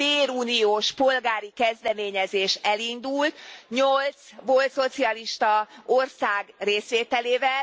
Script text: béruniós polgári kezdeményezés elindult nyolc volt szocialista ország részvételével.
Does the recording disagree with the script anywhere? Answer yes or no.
no